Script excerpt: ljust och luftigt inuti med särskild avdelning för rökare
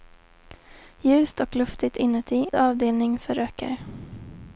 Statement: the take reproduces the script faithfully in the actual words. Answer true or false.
false